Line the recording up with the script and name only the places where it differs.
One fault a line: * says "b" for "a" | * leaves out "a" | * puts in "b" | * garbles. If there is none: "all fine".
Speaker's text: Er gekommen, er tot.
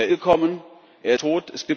all fine